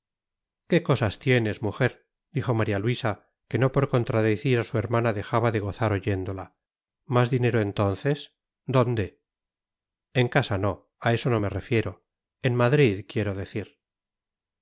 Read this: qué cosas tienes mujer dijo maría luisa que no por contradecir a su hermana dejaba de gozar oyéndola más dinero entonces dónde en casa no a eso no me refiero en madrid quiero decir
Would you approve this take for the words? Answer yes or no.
yes